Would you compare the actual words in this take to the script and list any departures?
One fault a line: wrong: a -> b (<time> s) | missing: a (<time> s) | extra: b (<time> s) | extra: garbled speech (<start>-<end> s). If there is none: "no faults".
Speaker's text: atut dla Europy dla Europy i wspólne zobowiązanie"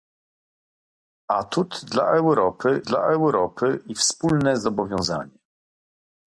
no faults